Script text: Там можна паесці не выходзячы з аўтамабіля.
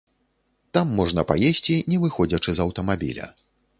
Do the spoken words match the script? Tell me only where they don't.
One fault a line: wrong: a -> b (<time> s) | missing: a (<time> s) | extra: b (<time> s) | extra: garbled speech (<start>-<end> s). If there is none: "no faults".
no faults